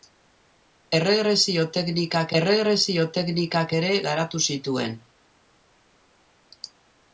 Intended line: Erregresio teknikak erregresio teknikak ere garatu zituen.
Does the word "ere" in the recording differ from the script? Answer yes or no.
no